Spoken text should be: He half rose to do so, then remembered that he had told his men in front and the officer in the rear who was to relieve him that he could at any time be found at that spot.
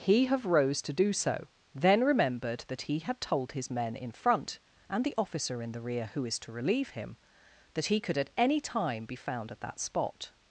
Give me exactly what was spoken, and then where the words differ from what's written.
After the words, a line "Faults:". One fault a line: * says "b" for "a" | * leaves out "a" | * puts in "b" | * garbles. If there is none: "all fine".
He have rose to do so, then remembered that he had told his men in front and the officer in the rear who is to relieve him that he could at any time be found at that spot.
Faults:
* says "have" for "half"
* says "is" for "was"